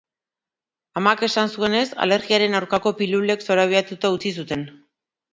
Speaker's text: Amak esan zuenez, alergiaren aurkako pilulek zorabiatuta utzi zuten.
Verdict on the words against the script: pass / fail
pass